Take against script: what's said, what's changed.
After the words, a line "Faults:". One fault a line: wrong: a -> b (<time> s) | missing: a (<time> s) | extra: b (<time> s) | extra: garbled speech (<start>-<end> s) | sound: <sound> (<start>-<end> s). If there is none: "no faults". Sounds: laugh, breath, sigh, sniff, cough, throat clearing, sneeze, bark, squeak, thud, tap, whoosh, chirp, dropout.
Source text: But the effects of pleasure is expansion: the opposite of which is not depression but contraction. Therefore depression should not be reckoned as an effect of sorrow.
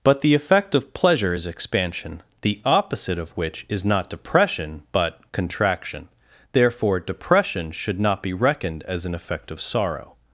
But the effect of pleasure is expansion: the opposite of which is not depression but contraction. Therefore depression should not be reckoned as an effect of sorrow.
Faults:
wrong: effects -> effect (0.3 s)